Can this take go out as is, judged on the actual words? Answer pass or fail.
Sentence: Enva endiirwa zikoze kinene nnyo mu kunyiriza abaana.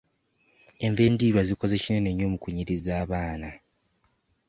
pass